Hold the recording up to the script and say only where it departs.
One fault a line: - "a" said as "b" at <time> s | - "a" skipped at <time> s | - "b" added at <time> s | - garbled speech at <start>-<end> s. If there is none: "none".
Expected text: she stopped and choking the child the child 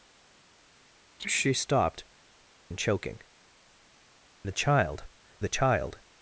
none